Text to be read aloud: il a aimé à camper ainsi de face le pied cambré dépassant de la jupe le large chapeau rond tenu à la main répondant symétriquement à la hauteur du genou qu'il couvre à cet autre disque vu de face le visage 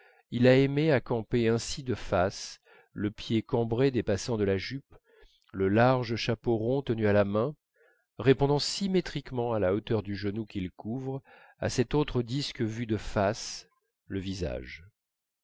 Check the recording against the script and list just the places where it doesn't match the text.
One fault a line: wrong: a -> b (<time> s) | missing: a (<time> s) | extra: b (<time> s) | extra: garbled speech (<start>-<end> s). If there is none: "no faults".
no faults